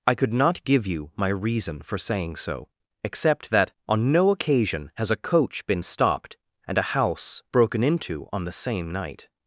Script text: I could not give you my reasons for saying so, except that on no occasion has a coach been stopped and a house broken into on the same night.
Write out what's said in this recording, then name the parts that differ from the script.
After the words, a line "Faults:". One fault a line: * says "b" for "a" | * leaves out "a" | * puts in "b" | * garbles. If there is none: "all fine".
I could not give you my reason for saying so, except that on no occasion has a coach been stopped and a house broken into on the same night.
Faults:
* says "reason" for "reasons"